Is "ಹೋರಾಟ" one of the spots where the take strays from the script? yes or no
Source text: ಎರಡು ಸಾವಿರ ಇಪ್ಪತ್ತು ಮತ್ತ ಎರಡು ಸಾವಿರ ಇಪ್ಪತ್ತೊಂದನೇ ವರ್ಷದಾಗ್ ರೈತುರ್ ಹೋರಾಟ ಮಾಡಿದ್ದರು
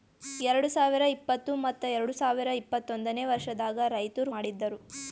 yes